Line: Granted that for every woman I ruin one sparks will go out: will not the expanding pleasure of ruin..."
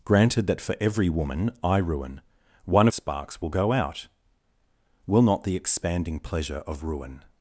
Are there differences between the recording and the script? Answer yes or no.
no